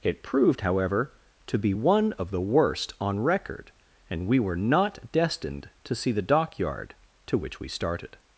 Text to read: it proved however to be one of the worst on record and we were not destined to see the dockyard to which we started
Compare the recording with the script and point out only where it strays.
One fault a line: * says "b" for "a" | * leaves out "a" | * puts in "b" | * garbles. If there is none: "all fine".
all fine